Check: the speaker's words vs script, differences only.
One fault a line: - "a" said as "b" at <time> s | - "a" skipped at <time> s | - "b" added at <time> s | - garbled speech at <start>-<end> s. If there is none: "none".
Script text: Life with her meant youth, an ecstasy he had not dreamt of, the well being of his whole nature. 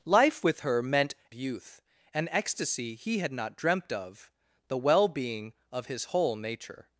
none